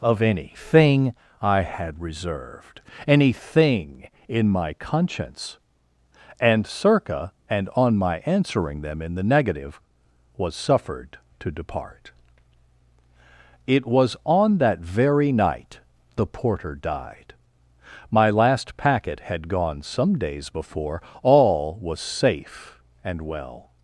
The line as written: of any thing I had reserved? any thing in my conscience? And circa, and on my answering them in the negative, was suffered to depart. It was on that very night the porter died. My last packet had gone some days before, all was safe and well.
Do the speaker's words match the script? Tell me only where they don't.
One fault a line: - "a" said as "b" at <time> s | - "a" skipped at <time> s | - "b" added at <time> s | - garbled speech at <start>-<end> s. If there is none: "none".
none